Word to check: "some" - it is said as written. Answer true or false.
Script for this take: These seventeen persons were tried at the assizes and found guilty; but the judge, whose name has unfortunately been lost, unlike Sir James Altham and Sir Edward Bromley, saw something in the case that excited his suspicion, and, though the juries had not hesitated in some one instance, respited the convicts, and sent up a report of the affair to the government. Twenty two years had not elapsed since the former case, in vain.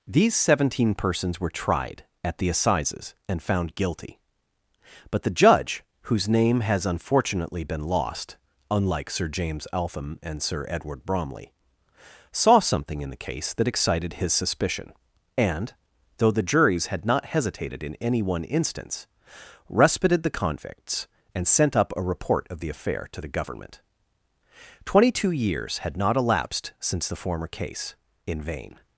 false